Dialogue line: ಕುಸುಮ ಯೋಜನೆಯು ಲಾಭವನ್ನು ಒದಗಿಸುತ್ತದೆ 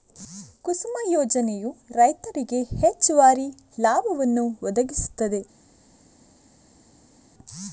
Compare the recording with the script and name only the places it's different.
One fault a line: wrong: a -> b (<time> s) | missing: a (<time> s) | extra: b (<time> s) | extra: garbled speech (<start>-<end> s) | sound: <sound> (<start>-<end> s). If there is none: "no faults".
extra: ರೈತರಿಗೆ ಹೆಚ್ಚುವರಿ (1.9 s)